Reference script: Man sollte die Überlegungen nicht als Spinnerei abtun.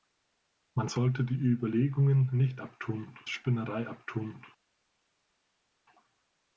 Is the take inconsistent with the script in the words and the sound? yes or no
yes